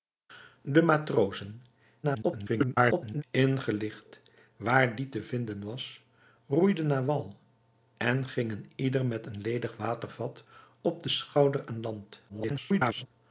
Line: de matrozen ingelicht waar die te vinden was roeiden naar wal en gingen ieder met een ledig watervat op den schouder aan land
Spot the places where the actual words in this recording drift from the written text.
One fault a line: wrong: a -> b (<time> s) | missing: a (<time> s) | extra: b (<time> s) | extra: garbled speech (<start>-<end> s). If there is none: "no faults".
extra: garbled speech (2.0-3.2 s)
extra: garbled speech (12.3-13.1 s)